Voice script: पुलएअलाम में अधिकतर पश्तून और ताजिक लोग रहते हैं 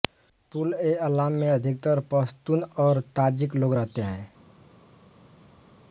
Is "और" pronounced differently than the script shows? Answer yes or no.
no